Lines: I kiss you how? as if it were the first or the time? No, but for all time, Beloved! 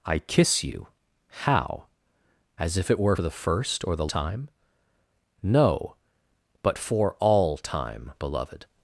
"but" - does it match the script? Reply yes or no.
yes